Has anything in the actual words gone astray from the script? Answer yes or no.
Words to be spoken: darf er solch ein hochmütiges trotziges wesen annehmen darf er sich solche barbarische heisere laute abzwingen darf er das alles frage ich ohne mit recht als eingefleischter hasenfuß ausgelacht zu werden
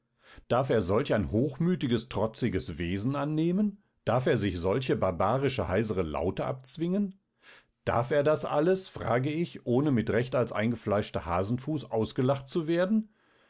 no